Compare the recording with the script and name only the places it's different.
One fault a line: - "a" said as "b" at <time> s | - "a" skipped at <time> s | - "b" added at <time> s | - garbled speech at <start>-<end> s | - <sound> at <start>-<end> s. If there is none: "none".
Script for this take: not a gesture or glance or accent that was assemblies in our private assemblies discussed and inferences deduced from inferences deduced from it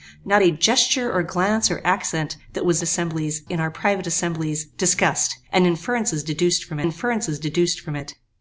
none